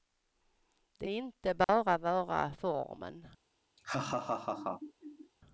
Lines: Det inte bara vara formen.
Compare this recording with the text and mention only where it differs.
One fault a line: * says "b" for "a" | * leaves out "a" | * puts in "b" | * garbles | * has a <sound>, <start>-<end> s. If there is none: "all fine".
* has a dropout, 1.6-1.7 s
* has a laugh, 3.8-5.3 s